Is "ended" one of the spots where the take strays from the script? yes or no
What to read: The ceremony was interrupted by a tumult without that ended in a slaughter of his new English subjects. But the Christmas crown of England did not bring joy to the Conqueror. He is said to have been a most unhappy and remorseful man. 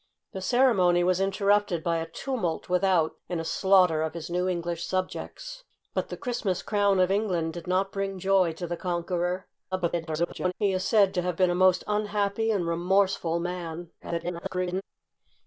yes